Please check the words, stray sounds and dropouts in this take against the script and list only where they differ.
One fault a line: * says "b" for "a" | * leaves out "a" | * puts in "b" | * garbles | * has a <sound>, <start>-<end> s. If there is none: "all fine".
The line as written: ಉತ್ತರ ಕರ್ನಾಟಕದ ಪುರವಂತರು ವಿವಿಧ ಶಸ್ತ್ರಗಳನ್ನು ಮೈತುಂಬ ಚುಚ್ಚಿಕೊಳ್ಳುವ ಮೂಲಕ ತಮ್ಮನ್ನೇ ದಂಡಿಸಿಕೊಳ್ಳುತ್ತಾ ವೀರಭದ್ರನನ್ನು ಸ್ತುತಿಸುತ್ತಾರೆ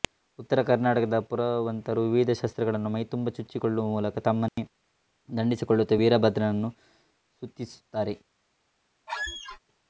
* has a dropout, 4.5-4.6 s
* has a squeak, 9.1-9.6 s